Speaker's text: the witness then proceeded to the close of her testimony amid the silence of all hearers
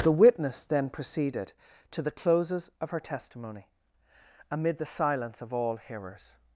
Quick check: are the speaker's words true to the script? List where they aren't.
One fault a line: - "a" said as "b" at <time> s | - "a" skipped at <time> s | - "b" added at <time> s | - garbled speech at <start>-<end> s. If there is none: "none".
- "close" said as "closes" at 2.1 s